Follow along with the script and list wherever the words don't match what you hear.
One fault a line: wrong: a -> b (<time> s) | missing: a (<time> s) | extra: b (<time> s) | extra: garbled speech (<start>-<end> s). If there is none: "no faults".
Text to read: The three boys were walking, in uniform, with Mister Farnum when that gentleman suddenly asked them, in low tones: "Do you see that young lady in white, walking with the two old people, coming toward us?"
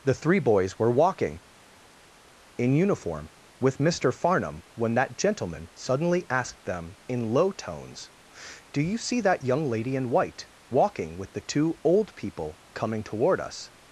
no faults